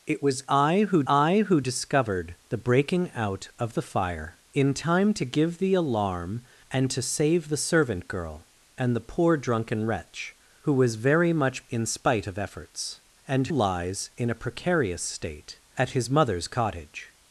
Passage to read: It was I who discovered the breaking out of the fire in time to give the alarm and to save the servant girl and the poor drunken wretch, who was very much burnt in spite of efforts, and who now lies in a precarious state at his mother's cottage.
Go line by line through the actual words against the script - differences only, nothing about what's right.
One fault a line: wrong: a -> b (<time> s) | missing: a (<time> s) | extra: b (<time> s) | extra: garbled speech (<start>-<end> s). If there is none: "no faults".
extra: I who (1.1 s)
missing: burnt (11.6 s)
missing: who now (13.5 s)